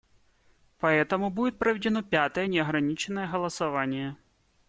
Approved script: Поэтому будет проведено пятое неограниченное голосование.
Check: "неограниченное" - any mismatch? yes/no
no